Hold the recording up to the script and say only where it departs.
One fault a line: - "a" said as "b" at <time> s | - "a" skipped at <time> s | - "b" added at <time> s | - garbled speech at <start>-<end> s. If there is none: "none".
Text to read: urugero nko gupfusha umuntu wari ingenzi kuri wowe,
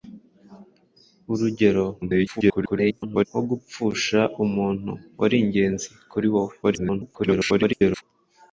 - garbled speech at 2.0-3.3 s
- garbled speech at 6.6-8.0 s